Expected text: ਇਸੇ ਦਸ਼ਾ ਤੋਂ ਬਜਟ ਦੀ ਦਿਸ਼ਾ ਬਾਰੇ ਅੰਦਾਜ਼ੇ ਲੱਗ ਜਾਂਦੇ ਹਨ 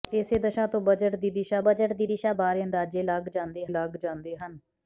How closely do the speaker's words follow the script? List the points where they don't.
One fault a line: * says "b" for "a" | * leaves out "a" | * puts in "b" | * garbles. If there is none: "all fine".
* puts in "ਬਜਟ ਦੀ ਦਿਸ਼ਾ"
* puts in "ਲੱਗ ਜਾਂਦੇ"